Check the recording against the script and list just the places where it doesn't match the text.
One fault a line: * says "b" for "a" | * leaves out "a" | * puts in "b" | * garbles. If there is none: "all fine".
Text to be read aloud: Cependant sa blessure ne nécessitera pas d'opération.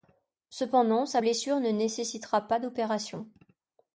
all fine